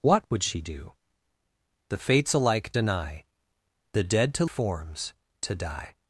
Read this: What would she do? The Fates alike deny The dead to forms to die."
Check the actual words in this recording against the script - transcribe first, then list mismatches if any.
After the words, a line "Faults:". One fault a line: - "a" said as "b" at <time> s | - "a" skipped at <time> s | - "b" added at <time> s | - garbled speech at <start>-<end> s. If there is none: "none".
What would she do? The Fates alike deny The dead to forms to die."
Faults:
none